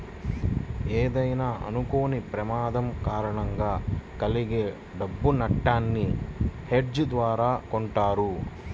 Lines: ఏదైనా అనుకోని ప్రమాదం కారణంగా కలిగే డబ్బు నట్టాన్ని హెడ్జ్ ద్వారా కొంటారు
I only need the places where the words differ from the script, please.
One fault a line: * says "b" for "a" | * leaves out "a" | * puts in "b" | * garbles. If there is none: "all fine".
all fine